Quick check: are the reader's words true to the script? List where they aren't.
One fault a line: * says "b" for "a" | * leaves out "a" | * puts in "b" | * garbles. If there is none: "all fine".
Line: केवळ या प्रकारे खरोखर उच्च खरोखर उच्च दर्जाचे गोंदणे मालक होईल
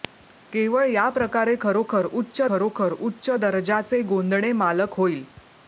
all fine